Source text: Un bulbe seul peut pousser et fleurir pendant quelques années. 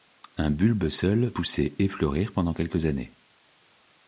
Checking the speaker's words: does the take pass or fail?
fail